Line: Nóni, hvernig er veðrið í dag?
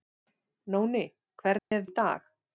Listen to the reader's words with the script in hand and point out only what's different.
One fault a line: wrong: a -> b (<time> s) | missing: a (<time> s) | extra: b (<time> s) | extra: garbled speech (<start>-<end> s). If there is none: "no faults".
missing: veðrið (1.9 s)